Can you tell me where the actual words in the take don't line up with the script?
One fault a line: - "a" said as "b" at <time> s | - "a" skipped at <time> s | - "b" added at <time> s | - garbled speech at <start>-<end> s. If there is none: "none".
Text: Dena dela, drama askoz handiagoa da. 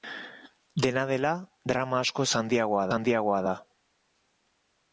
- "handiagoa" added at 3.0 s